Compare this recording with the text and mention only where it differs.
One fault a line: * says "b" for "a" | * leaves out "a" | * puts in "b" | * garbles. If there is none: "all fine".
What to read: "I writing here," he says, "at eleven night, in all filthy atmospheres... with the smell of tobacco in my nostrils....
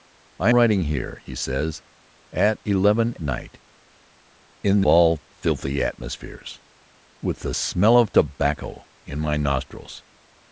all fine